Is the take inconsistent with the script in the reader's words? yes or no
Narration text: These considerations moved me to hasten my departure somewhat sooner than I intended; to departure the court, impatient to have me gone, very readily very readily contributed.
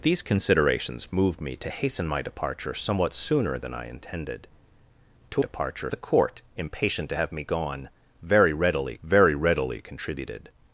no